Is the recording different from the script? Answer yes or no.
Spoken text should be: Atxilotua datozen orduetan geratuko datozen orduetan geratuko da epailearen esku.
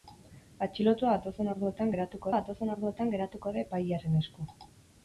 no